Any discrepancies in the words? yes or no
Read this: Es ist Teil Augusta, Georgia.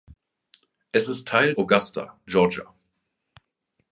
no